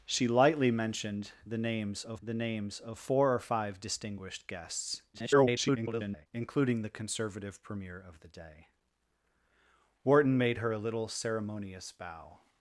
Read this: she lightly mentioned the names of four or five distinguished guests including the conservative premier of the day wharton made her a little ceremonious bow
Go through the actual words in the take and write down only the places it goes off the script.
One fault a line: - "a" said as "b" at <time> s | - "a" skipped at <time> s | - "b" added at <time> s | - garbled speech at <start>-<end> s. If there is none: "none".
- "the names of" added at 2.2 s
- garbled speech at 5.1-6.3 s